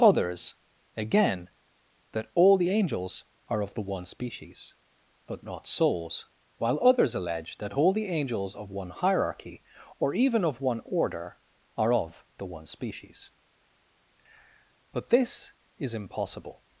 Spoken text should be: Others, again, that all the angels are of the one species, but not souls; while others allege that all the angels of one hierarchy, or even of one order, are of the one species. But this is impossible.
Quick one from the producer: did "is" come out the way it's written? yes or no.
yes